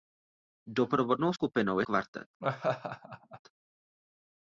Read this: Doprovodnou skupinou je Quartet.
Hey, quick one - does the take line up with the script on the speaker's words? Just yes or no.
yes